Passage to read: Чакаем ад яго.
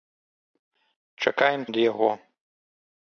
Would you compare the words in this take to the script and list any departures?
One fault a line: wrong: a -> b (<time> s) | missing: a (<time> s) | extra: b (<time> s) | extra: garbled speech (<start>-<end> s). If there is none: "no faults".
no faults